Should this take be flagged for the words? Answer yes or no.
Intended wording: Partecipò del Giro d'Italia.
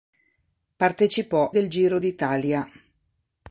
no